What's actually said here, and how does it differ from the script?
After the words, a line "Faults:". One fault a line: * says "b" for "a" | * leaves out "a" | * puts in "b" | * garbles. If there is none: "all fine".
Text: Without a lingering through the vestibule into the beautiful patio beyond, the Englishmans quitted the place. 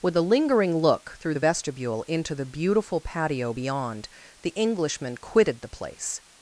With a lingering look through the vestibule into the beautiful patio beyond, the Englishman quitted the place.
Faults:
* says "With" for "Without"
* puts in "look"
* says "Englishman" for "Englishmans"